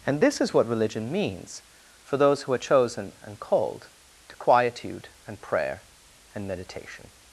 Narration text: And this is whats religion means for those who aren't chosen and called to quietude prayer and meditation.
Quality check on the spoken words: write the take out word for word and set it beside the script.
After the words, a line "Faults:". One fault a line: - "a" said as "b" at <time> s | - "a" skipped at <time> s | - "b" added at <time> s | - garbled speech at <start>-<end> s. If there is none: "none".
And this is what religion means for those who are chosen and called to quietude and prayer and meditation.
Faults:
- "whats" said as "what" at 0.5 s
- "aren't" said as "are" at 2.5 s
- "and" added at 5.3 s